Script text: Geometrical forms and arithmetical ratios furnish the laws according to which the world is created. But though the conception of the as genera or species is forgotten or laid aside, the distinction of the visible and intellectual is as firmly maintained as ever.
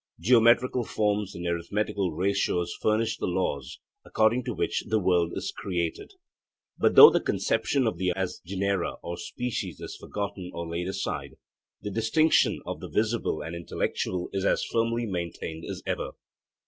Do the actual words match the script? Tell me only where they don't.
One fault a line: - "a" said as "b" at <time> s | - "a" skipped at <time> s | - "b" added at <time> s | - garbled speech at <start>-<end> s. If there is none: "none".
none